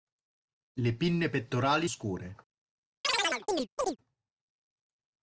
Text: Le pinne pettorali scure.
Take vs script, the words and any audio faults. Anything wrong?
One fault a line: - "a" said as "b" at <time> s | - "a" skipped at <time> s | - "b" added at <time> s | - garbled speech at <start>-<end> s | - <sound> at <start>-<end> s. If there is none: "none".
- chirp at 3.0-4.0 s